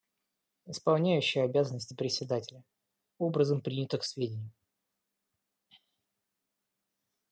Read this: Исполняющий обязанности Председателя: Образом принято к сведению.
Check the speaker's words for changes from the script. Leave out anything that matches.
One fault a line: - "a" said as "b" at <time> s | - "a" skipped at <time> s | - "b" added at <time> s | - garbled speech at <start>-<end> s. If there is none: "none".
none